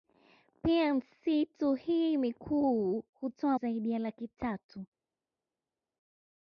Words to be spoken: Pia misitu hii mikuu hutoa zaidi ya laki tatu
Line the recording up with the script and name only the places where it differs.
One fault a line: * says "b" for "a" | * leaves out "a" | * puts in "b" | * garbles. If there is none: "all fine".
all fine